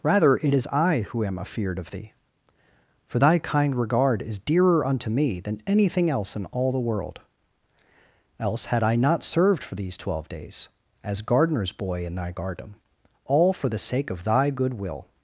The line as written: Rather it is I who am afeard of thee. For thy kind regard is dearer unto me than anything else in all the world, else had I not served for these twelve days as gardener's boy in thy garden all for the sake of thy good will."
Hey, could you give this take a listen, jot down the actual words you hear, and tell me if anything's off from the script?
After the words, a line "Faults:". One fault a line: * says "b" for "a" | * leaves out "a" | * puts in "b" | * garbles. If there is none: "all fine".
Rather it is I who am afeard of thee. For thy kind regard is dearer unto me than anything else in all the world, else had I not served for these twelve days as gardener's boy in thy garden all for the sake of thy good will."
Faults:
all fine